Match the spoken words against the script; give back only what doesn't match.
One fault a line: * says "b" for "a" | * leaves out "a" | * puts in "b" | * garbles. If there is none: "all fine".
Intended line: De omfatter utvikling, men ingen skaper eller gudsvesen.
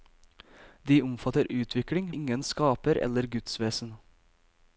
* leaves out "men"